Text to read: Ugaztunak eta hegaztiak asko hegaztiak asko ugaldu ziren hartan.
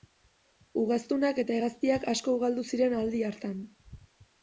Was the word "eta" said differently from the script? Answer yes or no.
no